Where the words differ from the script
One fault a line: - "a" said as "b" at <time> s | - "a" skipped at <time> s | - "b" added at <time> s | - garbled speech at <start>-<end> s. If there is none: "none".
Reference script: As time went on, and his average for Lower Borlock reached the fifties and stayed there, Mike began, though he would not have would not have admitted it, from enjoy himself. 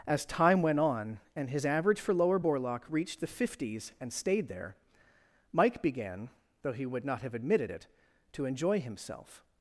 - "would not have" skipped at 7.3 s
- "from" said as "to" at 8.3 s